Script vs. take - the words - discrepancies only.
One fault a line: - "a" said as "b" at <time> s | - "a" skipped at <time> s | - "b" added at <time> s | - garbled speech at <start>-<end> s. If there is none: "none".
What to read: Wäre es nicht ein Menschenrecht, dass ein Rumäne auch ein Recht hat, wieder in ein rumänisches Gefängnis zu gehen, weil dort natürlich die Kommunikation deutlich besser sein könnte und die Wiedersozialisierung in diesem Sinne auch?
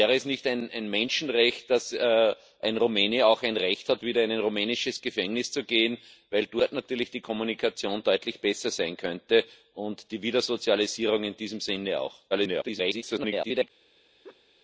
- garbled speech at 12.3-13.7 s